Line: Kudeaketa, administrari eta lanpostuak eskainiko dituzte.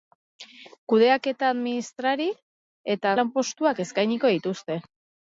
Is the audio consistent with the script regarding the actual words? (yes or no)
yes